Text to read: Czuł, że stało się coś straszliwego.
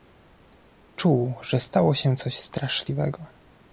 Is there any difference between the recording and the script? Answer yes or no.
no